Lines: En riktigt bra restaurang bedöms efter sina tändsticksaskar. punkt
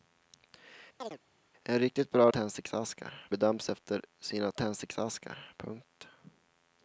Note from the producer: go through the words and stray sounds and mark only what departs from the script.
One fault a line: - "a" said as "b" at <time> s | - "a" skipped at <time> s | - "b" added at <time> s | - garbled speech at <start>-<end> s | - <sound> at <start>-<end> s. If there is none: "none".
- chirp at 1.0-1.2 s
- "restaurang" said as "tändsticksaskar" at 2.3 s